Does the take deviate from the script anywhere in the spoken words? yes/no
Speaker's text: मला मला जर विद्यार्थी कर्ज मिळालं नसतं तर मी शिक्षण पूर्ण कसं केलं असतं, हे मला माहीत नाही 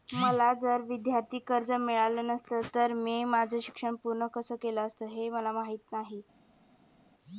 yes